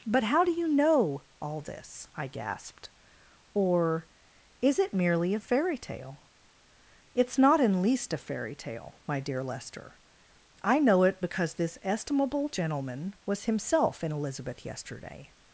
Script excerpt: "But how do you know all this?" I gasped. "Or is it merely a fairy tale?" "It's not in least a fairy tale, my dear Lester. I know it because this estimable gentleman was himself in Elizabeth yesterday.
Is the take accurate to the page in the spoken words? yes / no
yes